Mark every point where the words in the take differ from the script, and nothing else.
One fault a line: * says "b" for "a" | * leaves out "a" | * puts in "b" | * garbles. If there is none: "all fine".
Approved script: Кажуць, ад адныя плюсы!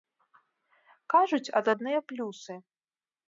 all fine